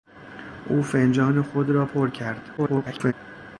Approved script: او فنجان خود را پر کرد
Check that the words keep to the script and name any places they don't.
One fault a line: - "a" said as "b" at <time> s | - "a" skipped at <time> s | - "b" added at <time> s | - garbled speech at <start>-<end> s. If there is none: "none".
- garbled speech at 2.6-3.1 s